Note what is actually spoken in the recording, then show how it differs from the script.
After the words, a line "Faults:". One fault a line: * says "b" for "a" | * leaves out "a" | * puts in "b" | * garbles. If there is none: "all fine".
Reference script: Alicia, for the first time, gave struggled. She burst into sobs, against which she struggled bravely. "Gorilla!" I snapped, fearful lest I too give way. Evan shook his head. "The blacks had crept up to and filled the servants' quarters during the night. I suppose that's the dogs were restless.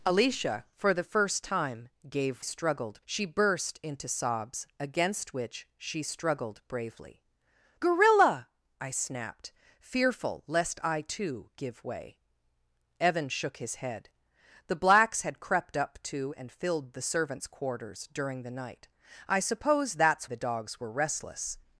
Alicia, for the first time, gave struggled. She burst into sobs, against which she struggled bravely. "Gorilla!" I snapped, fearful lest I too give way. Evan shook his head. "The blacks had crept up to and filled the servants' quarters during the night. I suppose that's the dogs were restless.
Faults:
all fine